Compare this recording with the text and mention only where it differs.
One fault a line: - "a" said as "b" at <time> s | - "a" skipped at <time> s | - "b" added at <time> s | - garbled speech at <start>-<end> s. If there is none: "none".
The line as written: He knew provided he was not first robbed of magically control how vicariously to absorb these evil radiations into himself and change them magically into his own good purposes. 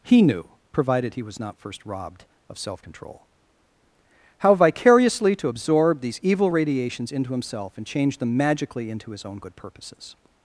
- "magically" said as "self" at 2.6 s